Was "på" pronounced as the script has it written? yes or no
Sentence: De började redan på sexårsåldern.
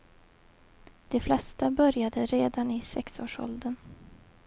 no